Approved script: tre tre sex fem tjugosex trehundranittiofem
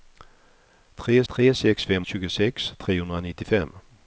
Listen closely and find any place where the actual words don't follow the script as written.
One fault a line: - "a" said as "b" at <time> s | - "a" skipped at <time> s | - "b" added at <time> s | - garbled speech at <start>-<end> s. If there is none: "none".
none